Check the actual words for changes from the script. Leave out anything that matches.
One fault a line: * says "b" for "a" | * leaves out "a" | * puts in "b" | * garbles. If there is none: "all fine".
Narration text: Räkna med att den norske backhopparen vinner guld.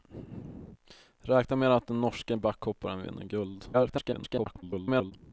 * garbles